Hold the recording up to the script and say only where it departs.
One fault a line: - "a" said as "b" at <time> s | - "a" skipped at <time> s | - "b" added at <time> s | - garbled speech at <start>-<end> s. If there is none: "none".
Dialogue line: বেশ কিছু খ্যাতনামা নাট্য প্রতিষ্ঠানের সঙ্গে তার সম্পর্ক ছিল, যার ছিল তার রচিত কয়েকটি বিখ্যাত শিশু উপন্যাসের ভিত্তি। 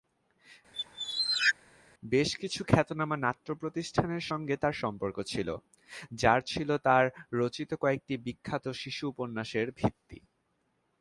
none